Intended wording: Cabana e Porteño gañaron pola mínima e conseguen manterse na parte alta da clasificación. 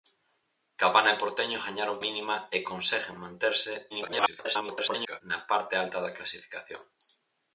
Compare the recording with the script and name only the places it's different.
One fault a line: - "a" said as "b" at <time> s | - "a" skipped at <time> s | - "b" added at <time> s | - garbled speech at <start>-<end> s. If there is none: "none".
- "pola" skipped at 2.0 s
- garbled speech at 3.9-5.2 s